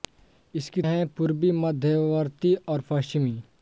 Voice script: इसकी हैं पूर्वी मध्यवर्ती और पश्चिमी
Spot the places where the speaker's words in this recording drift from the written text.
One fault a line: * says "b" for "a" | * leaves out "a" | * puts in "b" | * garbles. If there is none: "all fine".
all fine